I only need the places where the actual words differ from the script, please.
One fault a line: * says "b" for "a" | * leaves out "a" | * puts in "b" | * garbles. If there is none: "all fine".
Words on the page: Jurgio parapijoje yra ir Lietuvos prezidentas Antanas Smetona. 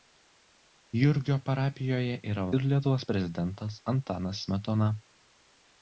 all fine